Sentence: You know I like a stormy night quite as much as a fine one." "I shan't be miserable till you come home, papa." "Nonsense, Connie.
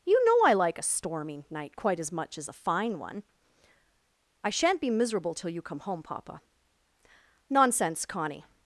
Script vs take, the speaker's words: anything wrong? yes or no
no